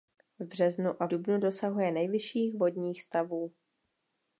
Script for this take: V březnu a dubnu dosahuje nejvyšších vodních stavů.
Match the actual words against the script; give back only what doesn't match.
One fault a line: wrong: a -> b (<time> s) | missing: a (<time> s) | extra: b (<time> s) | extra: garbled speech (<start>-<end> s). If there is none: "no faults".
no faults